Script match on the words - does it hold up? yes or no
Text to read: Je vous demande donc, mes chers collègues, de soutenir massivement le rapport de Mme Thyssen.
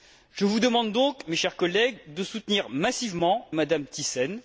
no